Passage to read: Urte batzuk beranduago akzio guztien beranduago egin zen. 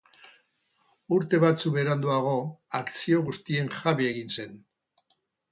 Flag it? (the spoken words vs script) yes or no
yes